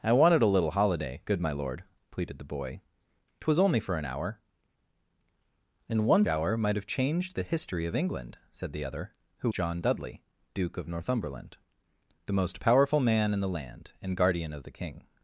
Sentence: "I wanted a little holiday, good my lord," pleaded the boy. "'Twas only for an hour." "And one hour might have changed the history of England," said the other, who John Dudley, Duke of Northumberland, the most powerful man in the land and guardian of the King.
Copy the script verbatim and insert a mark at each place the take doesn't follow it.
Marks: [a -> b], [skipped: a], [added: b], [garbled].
"I wanted a little holiday, good my lord," pleaded the boy. "'Twas only for an hour." "And one hour might have changed the history of England," said the other, who John Dudley, Duke of Northumberland, the most powerful man in the land and guardian of the King.